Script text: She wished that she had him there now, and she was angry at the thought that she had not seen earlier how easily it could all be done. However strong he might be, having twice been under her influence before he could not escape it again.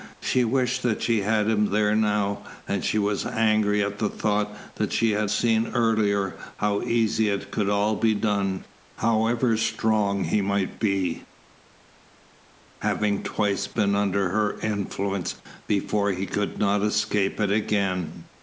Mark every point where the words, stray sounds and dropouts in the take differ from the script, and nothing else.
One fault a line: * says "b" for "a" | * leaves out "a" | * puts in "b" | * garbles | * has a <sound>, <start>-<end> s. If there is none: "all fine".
* leaves out "not"